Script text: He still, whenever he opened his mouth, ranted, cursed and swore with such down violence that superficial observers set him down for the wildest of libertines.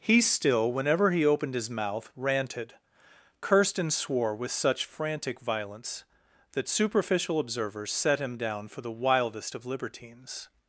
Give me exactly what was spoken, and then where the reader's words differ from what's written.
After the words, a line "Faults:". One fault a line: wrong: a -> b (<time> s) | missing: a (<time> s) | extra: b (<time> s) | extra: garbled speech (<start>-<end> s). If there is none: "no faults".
He still, whenever he opened his mouth, ranted, cursed and swore with such frantic violence that superficial observers set him down for the wildest of libertines.
Faults:
wrong: down -> frantic (4.8 s)